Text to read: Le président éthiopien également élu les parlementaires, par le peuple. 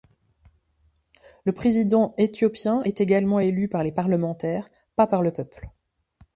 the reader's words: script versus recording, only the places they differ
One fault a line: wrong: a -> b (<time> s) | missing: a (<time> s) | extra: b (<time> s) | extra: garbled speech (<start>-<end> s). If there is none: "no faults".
extra: est (2.8 s)
extra: par (3.7 s)
extra: pas (4.9 s)